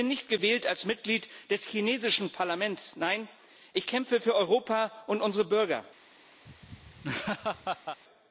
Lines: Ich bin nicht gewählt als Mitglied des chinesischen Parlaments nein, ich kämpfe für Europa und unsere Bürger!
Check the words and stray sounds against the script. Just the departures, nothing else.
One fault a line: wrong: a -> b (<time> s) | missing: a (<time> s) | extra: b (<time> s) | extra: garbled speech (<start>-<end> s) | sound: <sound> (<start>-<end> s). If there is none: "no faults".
sound: laugh (6.5-8.0 s)